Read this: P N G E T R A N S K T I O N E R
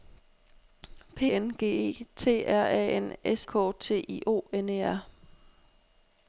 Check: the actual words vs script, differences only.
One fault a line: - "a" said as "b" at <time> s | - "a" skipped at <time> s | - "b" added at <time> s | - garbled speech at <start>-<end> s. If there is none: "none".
none